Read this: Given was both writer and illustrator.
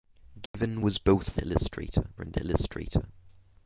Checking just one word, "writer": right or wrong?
wrong